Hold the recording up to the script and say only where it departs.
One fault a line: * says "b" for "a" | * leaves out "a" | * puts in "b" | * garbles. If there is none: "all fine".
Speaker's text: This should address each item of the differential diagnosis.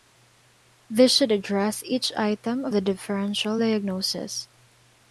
all fine